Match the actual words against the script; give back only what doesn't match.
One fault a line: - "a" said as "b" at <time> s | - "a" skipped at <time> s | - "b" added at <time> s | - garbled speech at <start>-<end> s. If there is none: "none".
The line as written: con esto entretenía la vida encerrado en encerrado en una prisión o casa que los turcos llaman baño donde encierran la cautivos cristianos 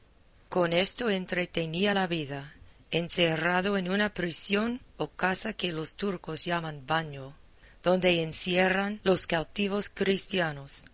- "encerrado en" skipped at 3.9 s
- "la" said as "los" at 9.0 s